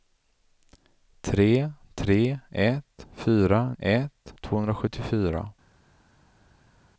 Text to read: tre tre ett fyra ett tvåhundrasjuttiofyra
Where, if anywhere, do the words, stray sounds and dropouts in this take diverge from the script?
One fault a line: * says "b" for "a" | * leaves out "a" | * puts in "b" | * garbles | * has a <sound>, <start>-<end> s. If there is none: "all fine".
all fine